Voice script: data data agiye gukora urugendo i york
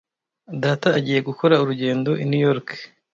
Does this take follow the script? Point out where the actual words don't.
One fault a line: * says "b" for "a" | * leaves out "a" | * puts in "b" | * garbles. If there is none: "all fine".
* leaves out "data"
* puts in "new"